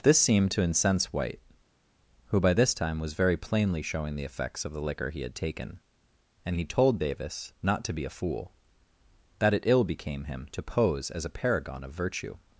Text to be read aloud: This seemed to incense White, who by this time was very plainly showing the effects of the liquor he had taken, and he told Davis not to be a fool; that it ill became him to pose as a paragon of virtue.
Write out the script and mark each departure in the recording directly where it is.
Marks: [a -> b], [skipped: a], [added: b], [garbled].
This seemed to incense White, who by this time was very plainly showing the effects of the liquor he had taken, and he told Davis not to be a fool; that it ill became him to pose as a paragon of virtue.